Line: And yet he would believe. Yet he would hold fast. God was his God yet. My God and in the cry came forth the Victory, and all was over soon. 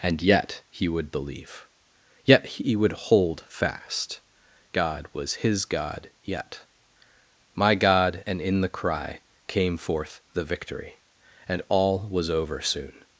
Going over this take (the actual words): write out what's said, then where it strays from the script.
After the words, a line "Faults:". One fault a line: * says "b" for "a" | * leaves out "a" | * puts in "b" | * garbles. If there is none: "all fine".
And yet he would believe. Yet he would hold fast. God was his God yet. My God and in the cry came forth the Victory, and all was over soon.
Faults:
all fine